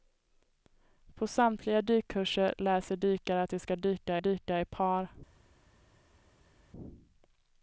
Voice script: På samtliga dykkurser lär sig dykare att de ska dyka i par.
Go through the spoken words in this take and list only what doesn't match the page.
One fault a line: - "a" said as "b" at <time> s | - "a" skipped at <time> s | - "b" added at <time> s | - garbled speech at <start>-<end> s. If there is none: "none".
- "dyka" added at 4.2 s